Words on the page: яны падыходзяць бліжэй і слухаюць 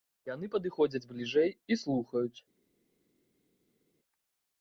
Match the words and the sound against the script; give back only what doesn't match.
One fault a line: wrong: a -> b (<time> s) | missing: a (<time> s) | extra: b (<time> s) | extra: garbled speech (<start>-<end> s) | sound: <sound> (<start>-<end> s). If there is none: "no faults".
no faults